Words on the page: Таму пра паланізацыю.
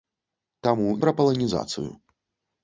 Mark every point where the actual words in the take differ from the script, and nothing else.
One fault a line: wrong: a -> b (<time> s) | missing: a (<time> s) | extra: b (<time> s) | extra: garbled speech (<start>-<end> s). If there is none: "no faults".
no faults